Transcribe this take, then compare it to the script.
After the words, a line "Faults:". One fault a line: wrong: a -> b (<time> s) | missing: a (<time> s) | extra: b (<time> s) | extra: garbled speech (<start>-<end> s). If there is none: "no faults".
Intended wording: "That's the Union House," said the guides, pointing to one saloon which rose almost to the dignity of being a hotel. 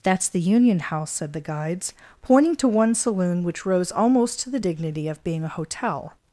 "That's the Union House," said the guides, pointing to one saloon which rose almost to the dignity of being a hotel.
Faults:
no faults